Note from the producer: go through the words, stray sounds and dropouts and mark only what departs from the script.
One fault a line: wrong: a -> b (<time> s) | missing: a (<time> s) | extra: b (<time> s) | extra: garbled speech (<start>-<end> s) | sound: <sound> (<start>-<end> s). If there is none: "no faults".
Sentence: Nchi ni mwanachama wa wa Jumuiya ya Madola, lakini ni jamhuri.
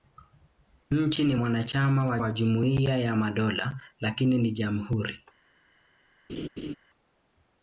sound: laugh (6.3-6.7 s)